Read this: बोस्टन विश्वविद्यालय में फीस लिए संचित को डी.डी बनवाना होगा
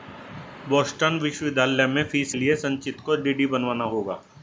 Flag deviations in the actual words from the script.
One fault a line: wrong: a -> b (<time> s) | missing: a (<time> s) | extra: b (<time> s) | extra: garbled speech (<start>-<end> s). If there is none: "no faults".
no faults